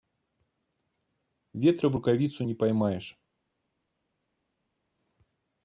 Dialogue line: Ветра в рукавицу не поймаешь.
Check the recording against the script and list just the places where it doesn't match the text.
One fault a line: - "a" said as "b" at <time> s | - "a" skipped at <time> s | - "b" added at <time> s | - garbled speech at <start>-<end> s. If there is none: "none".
none